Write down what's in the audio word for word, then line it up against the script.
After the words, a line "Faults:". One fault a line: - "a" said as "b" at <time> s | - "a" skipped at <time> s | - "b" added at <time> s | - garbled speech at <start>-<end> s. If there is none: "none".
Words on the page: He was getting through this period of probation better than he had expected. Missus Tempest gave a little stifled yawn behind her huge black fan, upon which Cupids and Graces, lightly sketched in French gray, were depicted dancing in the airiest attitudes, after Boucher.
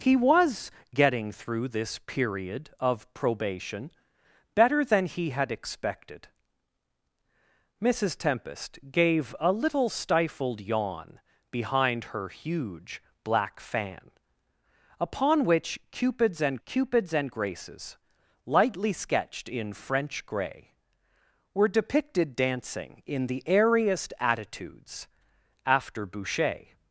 He was getting through this period of probation better than he had expected. Missus Tempest gave a little stifled yawn behind her huge black fan, upon which Cupids and Cupids and Graces, lightly sketched in French gray, were depicted dancing in the airiest attitudes, after Boucher.
Faults:
- "Cupids and" added at 16.7 s